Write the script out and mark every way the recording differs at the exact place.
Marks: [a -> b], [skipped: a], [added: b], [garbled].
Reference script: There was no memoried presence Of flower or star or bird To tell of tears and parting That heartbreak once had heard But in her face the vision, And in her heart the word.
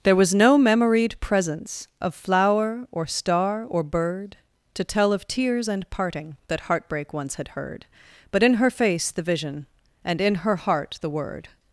There was no memoried presence Of flower or star or bird To tell of tears and parting That heartbreak once had heard But in her face the vision, And in her heart the word.